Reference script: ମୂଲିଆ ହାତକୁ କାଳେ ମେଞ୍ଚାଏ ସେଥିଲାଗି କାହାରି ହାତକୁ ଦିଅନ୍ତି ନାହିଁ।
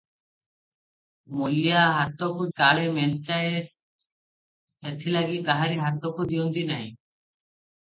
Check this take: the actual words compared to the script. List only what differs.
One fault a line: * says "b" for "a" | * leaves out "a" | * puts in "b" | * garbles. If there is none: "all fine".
all fine